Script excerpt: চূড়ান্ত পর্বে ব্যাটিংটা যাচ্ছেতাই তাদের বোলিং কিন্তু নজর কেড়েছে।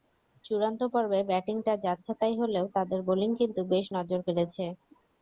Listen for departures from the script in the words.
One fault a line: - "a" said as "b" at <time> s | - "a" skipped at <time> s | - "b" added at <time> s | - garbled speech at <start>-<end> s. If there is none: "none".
- "হলেও" added at 2.4 s
- "বেশ" added at 3.7 s